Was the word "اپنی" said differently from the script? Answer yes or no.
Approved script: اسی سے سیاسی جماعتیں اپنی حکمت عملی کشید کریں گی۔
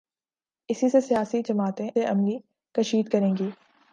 yes